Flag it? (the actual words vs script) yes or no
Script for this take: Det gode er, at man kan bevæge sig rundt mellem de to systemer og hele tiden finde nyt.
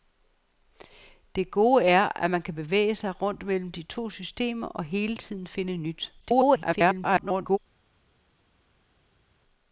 yes